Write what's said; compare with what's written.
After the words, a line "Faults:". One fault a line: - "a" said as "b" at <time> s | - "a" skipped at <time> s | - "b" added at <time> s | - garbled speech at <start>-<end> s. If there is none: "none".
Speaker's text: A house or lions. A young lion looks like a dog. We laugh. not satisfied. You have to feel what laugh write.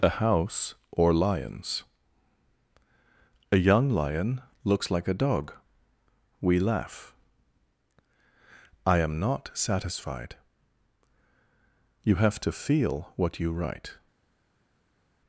A house or lions. A young lion looks like a dog. We laugh. I am not satisfied. You have to feel what you write.
Faults:
- "I am" added at 8.8 s
- "laugh" said as "you" at 13.4 s